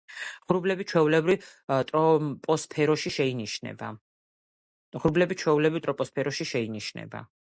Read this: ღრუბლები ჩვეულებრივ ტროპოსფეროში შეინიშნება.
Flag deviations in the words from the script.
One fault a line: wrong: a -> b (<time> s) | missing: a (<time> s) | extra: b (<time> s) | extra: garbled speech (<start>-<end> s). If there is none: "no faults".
no faults